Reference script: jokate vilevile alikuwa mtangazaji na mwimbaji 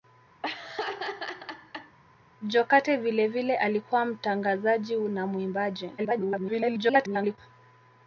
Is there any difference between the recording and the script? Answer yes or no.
yes